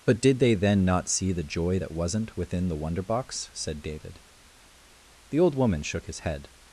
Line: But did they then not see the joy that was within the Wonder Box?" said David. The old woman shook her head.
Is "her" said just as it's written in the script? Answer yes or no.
no